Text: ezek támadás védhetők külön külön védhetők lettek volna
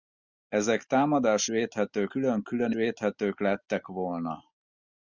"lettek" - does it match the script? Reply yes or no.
yes